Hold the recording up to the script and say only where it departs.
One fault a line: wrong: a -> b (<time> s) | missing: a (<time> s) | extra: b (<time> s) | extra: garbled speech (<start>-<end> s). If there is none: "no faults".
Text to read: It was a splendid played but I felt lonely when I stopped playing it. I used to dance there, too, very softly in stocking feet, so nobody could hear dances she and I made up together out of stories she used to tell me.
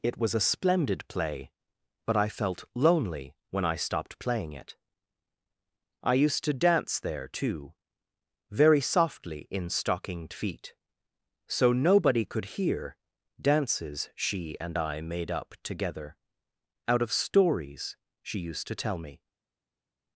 wrong: played -> play (1.1 s)
wrong: stocking -> stockinged (9.7 s)